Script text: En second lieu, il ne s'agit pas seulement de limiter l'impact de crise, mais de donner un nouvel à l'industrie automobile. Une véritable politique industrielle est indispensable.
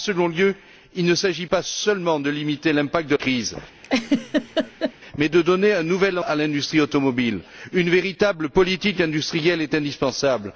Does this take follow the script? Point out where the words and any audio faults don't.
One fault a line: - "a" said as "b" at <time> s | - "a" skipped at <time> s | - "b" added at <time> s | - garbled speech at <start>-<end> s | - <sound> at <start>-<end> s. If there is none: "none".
- laugh at 3.8-4.9 s